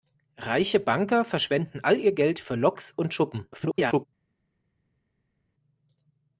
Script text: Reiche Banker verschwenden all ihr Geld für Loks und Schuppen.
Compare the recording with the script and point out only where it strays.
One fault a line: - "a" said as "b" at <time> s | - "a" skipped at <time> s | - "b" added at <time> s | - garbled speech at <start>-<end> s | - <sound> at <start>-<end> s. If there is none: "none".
- garbled speech at 3.5-4.1 s